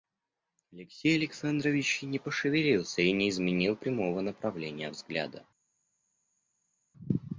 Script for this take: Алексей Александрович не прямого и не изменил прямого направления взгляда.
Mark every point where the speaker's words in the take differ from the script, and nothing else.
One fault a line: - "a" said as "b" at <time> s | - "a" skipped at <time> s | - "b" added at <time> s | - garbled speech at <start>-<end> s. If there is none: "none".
- "прямого" said as "пошевелился" at 2.2 s